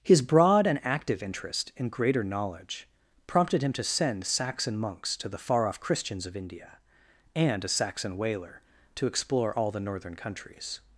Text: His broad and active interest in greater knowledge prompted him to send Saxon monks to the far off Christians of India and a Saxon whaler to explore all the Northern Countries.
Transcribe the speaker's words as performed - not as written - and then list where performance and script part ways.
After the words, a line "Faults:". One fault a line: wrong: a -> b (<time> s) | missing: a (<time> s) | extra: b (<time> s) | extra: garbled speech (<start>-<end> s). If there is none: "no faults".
His broad and active interest in greater knowledge prompted him to send Saxon monks to the far off Christians of India and a Saxon whaler to explore all the Northern Countries.
Faults:
no faults